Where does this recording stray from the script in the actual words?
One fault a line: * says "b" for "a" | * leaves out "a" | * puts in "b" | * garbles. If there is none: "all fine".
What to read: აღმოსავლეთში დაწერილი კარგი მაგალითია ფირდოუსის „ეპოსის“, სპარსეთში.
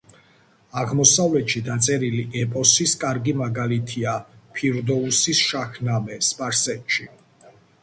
* puts in "ეპოსის"
* says "შაჰნამე" for "ეპოსის"